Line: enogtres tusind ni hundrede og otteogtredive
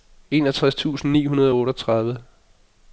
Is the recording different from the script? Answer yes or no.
no